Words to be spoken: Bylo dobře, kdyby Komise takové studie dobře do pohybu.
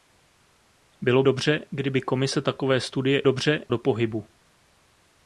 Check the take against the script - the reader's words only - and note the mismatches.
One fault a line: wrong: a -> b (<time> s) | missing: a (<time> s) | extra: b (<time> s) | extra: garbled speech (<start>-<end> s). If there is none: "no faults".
no faults